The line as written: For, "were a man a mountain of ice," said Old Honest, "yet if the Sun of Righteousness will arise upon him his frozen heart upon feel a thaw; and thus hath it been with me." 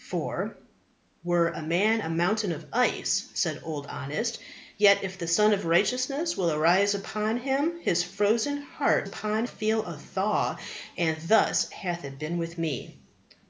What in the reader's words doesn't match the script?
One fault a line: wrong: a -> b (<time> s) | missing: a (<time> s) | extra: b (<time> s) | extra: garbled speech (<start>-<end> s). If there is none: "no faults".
no faults